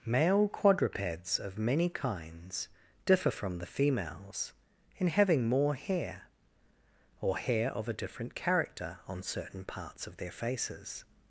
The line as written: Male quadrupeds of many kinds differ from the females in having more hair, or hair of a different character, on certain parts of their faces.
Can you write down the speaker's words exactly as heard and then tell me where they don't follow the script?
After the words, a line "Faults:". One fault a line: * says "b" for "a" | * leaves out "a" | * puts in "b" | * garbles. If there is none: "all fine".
Male quadrupeds of many kinds differ from the females in having more hair, or hair of a different character, on certain parts of their faces.
Faults:
all fine